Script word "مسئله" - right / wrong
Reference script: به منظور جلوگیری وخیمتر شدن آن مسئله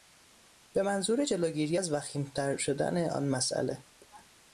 right